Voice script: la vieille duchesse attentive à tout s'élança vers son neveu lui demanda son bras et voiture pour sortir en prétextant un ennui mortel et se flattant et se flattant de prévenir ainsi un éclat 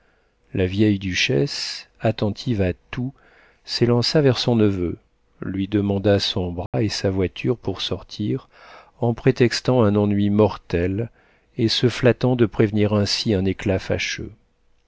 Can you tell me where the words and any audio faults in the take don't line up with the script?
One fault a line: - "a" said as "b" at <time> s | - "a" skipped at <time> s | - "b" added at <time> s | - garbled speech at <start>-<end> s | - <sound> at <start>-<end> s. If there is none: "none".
- dropout at 6.7-6.7 s
- "sa" added at 6.9 s
- "et se flattant" skipped at 12.3 s